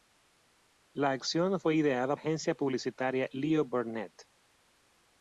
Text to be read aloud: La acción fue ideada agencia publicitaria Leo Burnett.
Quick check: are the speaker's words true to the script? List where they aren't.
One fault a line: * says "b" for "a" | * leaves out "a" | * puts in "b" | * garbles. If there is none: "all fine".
all fine